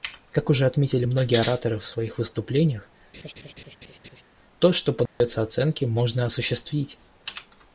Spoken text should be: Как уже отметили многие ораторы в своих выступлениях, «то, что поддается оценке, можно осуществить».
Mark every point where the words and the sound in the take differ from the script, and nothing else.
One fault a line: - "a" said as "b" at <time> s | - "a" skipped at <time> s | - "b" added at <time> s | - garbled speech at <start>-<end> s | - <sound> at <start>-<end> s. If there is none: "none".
- laugh at 3.1-4.2 s
- dropout at 5.1-5.2 s